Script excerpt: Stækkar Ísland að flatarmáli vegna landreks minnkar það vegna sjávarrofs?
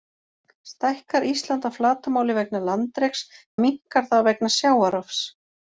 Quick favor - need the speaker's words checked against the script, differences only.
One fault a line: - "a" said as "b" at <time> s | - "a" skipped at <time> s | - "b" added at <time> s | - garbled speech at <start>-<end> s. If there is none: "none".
none